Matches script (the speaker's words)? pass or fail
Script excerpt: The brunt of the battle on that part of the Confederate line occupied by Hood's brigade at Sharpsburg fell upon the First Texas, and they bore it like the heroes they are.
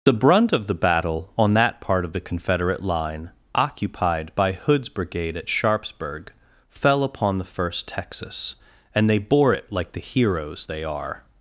pass